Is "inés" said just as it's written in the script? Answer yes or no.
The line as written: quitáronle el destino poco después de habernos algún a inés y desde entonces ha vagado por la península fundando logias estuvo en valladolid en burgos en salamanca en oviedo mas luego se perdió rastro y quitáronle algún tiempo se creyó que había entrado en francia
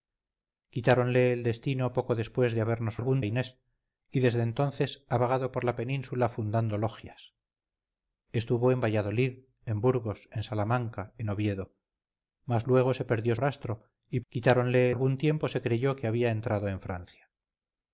yes